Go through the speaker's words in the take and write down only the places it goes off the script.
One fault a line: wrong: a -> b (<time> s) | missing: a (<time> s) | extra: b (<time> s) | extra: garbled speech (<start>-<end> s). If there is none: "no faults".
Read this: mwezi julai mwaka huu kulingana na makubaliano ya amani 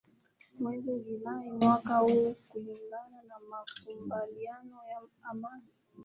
no faults